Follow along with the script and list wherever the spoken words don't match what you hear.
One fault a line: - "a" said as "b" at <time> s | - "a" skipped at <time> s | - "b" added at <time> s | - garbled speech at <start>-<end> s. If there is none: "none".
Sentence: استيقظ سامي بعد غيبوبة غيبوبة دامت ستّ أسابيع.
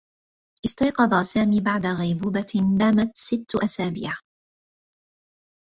- "غيبوبة" skipped at 2.8 s